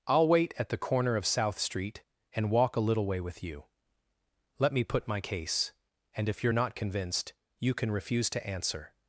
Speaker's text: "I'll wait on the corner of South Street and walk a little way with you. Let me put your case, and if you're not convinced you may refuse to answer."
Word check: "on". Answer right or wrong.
wrong